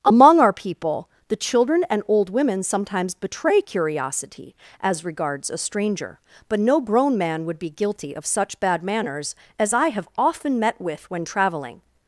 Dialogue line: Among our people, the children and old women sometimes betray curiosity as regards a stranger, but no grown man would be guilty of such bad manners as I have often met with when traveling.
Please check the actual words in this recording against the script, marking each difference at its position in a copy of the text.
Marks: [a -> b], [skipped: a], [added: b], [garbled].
Among our people, the children and old women sometimes betray curiosity as regards a stranger, but no grown man would be guilty of such bad manners as I have often met with when traveling.